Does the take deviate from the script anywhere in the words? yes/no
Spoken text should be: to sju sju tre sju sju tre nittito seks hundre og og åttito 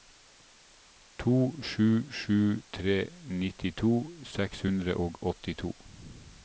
yes